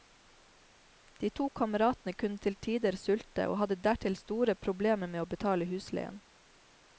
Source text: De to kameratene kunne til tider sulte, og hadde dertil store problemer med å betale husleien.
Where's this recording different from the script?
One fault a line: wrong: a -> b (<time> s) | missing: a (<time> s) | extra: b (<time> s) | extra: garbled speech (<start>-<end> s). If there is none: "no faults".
no faults